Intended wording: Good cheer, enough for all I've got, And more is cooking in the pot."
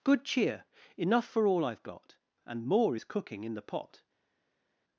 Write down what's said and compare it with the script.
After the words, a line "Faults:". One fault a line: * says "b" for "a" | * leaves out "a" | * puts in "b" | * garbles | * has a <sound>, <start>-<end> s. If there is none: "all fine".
Good cheer, enough for all I've got, And more is cooking in the pot."
Faults:
all fine